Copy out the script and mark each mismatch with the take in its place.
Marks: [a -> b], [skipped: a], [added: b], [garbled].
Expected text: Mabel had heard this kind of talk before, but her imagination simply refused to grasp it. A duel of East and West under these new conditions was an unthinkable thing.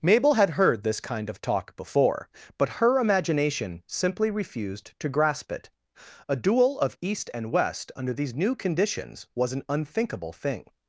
Mabel had heard this kind of talk before, but her imagination simply refused to grasp it. A duel of East and West under these new conditions was an unthinkable thing.